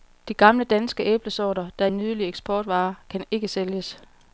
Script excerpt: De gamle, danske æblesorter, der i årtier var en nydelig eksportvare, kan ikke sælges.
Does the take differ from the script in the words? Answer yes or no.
yes